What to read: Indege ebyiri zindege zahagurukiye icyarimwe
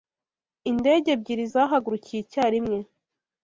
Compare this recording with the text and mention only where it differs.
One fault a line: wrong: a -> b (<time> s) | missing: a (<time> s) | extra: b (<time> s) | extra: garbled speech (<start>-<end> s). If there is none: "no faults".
missing: zindege (1.4 s)